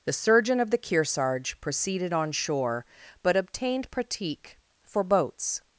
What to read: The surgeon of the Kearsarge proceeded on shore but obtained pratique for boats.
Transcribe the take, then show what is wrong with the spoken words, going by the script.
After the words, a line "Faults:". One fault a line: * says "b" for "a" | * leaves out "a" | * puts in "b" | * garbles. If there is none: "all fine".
The surgeon of the Kearsarge proceeded on shore but obtained pratique for boats.
Faults:
all fine